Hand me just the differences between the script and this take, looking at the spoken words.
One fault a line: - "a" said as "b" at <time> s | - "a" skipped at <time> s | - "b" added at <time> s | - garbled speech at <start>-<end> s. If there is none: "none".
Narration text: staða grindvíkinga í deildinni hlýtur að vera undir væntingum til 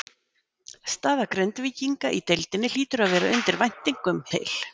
none